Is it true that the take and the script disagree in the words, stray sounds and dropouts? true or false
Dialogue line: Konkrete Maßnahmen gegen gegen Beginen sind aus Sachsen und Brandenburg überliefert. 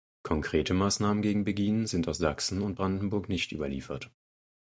true